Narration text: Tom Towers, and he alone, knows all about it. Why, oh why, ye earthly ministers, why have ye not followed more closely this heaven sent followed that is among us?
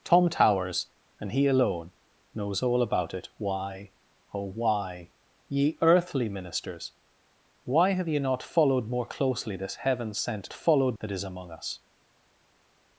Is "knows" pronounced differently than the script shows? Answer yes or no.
no